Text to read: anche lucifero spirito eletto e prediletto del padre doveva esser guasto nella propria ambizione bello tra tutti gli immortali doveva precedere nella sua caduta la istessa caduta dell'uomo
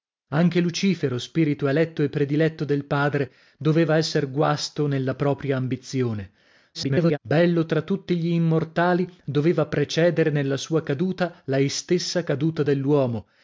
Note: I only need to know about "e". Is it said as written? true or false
true